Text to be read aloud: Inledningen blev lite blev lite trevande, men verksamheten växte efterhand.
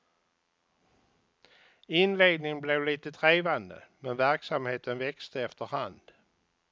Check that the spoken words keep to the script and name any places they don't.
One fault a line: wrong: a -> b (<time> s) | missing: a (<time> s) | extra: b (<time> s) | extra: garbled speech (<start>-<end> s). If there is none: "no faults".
missing: blev lite (3.1 s)